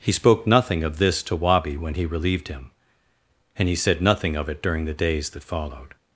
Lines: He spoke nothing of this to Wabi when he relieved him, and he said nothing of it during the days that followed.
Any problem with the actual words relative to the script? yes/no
no